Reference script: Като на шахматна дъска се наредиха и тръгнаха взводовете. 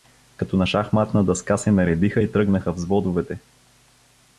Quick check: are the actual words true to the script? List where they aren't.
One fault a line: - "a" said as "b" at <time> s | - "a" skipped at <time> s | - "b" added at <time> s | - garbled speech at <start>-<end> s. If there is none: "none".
none